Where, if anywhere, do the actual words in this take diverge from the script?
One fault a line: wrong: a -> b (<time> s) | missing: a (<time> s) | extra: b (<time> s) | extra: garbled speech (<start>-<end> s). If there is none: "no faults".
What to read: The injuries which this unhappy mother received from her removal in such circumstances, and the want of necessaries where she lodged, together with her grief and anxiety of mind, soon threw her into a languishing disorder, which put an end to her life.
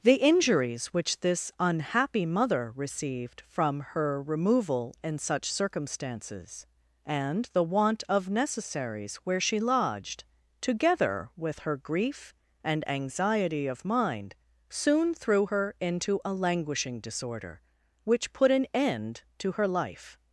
no faults